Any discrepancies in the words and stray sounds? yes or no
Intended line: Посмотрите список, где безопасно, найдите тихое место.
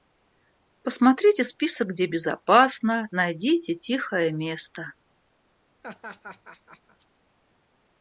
yes